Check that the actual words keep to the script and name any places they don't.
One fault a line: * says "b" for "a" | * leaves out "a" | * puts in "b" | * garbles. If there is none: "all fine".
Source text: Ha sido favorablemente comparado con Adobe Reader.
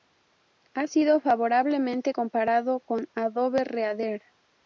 all fine